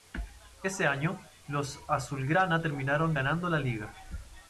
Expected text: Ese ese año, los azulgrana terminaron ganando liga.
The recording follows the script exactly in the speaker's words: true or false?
false